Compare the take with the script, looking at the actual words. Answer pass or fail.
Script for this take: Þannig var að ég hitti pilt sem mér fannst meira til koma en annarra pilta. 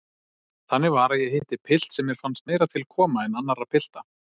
pass